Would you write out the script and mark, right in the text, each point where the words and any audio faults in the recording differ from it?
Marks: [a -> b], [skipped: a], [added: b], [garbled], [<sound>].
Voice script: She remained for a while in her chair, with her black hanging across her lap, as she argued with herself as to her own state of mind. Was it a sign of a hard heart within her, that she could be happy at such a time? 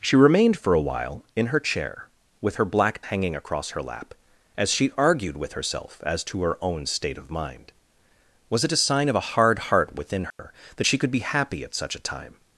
She remained for a while in her chair, with her black hanging across her lap, as she argued with herself as to her own state of mind. Was it a sign of a hard heart within her, [dropout] that she could be happy at such a time?